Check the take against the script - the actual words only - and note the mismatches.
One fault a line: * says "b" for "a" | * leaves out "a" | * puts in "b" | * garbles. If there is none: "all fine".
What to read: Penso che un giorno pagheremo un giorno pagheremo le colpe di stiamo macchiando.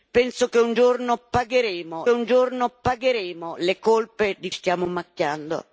all fine